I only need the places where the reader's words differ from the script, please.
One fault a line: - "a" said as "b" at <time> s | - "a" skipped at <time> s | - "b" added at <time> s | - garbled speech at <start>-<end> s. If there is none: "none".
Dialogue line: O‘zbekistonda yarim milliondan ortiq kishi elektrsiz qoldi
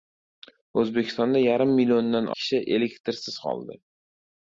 - "ortiq" skipped at 2.3 s